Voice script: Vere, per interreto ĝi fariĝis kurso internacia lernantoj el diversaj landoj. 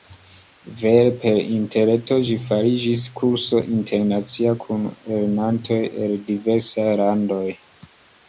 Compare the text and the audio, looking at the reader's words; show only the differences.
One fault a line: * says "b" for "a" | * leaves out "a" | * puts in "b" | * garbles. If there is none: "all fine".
* puts in "kun"